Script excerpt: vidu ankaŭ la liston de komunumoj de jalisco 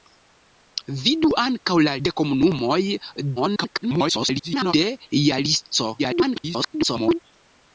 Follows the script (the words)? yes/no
no